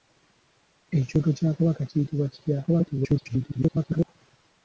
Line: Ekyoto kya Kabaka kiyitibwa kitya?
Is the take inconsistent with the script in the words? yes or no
yes